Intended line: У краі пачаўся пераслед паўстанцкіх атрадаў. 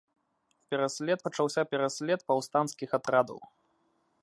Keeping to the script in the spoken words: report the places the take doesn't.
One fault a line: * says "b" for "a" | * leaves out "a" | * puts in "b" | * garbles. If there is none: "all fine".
* says "пераслед" for "краі"